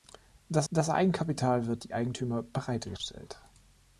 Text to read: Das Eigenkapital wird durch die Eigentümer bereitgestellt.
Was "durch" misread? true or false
true